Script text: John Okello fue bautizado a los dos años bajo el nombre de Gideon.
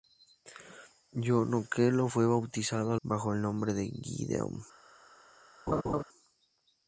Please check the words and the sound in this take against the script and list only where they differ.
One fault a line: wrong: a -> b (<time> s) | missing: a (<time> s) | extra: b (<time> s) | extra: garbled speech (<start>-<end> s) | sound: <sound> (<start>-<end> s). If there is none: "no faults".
missing: los dos años (3.0 s)
sound: laugh (5.7-6.0 s)